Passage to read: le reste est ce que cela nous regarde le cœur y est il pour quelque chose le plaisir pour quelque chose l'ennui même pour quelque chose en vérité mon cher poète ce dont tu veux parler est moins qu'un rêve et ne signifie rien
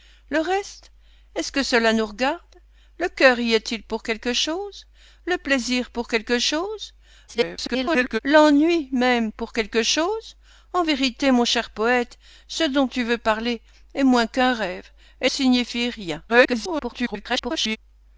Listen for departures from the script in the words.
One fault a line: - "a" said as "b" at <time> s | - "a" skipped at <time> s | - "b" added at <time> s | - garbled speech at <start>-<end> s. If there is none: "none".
- garbled speech at 7.3-8.2 s
- "ne" skipped at 15.3 s
- garbled speech at 16.3-17.8 s